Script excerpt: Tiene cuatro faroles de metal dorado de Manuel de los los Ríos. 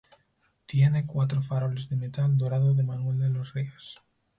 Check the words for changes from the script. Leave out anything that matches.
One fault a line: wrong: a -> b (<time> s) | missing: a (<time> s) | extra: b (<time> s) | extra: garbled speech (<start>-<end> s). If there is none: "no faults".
missing: los (3.5 s)